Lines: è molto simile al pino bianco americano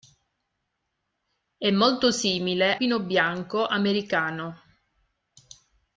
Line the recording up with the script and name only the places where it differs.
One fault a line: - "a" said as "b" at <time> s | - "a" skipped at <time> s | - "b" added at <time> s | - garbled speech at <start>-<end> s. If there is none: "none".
- "al" skipped at 2.8 s